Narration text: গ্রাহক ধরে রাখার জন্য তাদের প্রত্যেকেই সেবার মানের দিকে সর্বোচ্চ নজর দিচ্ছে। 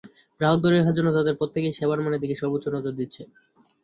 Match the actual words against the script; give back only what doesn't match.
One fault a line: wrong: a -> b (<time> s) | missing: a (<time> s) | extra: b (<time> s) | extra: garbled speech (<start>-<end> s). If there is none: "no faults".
no faults